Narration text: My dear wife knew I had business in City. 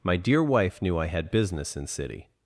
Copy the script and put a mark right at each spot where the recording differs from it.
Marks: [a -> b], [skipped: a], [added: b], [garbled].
My dear wife knew I had business in City.